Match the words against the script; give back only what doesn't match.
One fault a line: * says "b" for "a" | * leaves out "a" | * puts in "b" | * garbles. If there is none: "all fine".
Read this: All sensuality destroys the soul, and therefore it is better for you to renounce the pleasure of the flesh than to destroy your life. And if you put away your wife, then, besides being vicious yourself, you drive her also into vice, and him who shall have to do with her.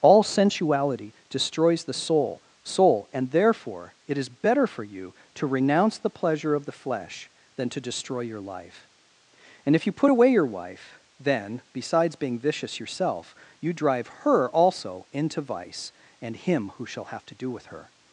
* puts in "soul"